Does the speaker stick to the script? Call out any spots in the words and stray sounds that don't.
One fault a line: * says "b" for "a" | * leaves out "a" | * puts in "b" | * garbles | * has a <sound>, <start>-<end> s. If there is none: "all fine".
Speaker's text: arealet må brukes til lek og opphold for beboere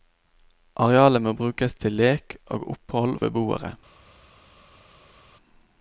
* leaves out "for"